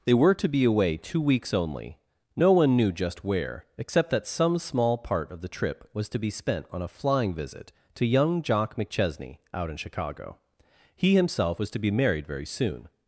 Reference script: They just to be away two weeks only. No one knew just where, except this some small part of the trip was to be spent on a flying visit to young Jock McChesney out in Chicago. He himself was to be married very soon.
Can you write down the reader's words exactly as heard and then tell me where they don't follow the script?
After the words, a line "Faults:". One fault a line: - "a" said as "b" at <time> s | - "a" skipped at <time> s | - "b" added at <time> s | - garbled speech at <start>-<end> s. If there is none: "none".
They were to be away two weeks only. No one knew just where, except that some small part of the trip was to be spent on a flying visit to young Jock McChesney out in Chicago. He himself was to be married very soon.
Faults:
- "just" said as "were" at 0.1 s
- "this" said as "that" at 4.1 s